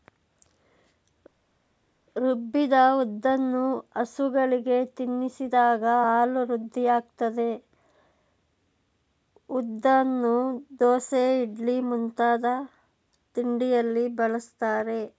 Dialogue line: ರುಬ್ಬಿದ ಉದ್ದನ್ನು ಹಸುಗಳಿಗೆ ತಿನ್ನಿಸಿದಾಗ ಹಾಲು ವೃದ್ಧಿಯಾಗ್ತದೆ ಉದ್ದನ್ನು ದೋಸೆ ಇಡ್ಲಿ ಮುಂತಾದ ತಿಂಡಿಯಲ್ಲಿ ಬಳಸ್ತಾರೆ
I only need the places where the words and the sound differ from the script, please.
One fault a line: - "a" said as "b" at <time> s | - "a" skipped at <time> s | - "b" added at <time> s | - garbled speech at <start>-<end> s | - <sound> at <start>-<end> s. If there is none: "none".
none